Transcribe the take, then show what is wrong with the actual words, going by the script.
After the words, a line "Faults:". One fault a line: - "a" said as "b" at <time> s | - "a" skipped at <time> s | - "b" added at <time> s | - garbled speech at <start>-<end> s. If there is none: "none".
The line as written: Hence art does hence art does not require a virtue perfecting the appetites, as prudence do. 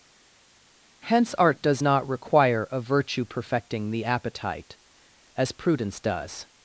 Hence art does not require a virtue perfecting the appetite, as prudence does.
Faults:
- "hence art does" skipped at 1.8 s
- "appetites" said as "appetite" at 4.0 s
- "do" said as "does" at 6.0 s